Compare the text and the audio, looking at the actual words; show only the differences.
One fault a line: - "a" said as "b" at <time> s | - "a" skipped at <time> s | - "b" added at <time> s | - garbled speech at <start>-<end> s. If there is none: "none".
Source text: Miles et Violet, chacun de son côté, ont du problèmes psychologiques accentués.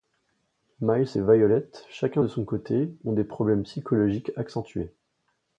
- "du" said as "des" at 3.1 s